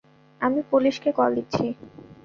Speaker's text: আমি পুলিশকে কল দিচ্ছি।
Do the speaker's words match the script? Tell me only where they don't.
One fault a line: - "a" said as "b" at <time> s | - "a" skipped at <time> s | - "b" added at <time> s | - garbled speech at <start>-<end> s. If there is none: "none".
none